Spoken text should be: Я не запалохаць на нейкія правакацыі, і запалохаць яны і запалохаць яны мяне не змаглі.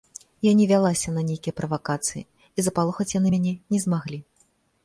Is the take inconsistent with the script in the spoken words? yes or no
yes